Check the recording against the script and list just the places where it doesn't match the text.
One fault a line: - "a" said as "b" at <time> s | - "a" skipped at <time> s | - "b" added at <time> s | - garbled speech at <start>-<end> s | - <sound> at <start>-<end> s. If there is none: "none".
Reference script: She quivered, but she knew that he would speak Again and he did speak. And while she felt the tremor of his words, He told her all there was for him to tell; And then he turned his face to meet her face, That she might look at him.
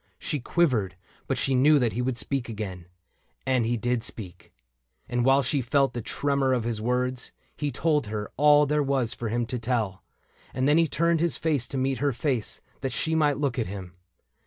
none